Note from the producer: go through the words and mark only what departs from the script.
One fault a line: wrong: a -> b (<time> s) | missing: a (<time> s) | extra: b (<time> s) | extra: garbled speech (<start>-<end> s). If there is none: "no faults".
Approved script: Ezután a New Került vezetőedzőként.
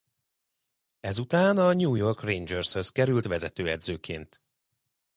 extra: York Rangershez (1.9 s)